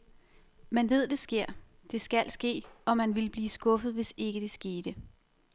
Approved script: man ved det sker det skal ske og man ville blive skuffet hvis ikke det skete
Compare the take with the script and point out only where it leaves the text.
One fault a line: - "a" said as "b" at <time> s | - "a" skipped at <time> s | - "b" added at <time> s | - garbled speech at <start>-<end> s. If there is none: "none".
none